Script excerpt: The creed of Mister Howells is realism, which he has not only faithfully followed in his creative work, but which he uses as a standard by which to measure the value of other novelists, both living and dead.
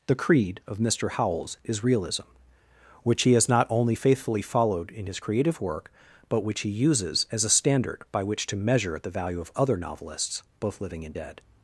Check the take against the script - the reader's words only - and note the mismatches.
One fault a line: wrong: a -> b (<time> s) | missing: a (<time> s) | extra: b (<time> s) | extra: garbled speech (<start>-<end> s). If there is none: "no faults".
no faults